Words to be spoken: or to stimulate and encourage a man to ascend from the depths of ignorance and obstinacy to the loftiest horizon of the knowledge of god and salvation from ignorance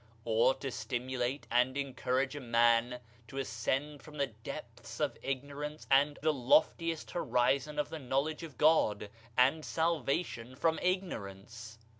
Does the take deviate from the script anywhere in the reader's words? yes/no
yes